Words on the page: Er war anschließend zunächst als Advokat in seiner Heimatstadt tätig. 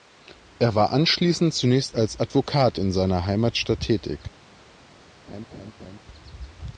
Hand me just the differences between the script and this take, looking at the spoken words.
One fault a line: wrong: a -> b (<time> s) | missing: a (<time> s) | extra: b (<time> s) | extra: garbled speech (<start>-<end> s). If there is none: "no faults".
no faults